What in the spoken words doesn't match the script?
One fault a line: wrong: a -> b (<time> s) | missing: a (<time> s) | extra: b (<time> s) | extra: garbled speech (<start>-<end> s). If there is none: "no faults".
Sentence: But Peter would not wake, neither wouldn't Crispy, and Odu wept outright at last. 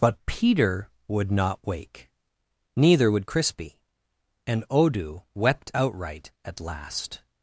wrong: wouldn't -> would (3.1 s)